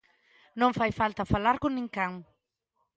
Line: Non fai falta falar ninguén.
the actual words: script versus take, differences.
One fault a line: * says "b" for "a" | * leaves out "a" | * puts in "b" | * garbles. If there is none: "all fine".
* puts in "con"